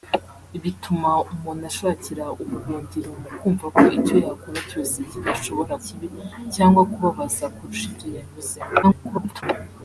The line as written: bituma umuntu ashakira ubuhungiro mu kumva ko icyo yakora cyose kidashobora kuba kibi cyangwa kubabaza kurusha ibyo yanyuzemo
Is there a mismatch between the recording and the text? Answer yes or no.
yes